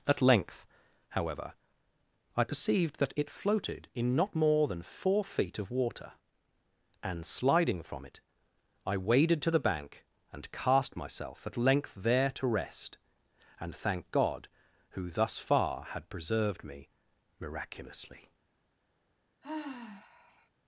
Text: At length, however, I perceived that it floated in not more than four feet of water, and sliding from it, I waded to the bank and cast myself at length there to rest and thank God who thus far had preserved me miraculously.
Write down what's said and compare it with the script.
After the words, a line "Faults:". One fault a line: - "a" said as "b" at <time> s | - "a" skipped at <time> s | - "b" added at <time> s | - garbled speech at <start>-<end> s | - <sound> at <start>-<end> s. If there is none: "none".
At length, however, I perceived that it floated in not more than four feet of water, and sliding from it, I waded to the bank and cast myself at length there to rest and thank God who thus far had preserved me miraculously.
Faults:
- sigh at 19.4-20.5 s